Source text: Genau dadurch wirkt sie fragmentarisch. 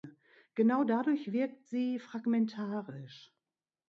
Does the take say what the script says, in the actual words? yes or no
yes